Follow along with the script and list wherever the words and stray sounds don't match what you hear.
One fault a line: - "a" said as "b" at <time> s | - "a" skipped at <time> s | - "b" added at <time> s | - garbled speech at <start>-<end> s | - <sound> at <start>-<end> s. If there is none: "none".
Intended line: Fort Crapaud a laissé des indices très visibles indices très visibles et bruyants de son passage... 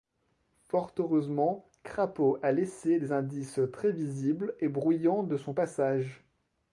- "heureusement" added at 1.0 s
- "indices très visibles" skipped at 4.5 s